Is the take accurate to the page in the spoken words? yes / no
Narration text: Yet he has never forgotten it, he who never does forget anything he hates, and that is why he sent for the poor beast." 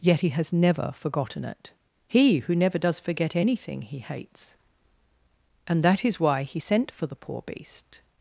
yes